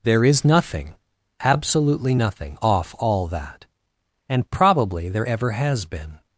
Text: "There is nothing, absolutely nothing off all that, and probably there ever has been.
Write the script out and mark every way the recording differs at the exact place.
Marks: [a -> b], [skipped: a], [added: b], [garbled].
"There is nothing, absolutely nothing off all that, and probably there ever has been.